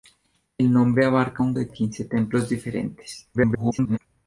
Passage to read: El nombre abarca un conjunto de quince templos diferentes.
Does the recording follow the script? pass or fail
fail